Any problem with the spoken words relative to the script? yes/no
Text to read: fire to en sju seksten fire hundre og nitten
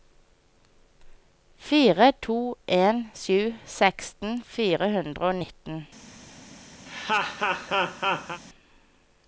no